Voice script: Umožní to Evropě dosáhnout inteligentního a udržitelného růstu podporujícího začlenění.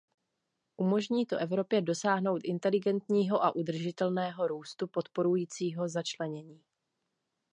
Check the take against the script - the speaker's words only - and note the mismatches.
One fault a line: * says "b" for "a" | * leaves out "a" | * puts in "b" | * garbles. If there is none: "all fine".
all fine